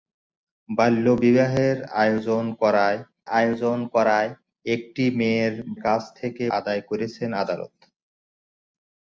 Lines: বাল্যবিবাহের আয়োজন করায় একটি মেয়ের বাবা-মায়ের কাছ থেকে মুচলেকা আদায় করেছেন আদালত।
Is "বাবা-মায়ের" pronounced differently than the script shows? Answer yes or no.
yes